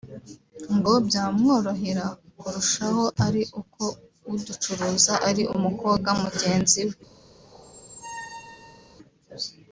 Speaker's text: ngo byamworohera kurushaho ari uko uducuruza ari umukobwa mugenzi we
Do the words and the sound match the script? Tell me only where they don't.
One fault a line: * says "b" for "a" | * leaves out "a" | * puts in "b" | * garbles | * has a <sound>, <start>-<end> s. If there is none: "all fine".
* has a squeak, 7.4-9.0 s